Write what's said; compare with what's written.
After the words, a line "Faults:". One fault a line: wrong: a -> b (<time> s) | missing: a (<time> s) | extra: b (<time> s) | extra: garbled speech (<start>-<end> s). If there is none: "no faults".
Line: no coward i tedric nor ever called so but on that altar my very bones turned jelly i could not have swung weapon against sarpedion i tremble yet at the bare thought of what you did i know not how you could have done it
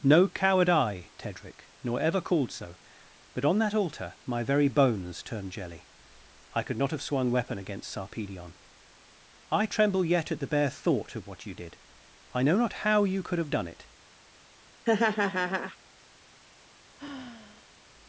no coward i tedric nor ever called so but on that altar my very bones turned jelly i could not have swung weapon against sarpedion i tremble yet at the bare thought of what you did i know not how you could have done it
Faults:
no faults